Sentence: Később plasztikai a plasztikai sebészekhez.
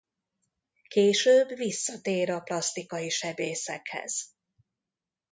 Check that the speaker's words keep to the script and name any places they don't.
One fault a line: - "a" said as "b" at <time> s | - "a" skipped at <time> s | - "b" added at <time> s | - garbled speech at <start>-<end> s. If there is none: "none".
- "plasztikai" said as "visszatér" at 1.6 s